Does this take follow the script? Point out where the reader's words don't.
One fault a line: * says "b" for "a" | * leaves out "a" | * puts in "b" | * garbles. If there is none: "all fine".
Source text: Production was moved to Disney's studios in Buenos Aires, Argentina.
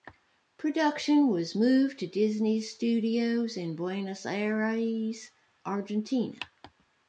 all fine